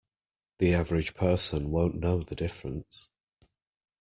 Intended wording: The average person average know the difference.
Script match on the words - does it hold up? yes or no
no